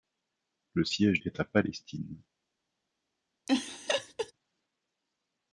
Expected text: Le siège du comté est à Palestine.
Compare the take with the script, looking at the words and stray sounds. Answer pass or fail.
fail